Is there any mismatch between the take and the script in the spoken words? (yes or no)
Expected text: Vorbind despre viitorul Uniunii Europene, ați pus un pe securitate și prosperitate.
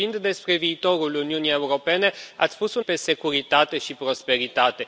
no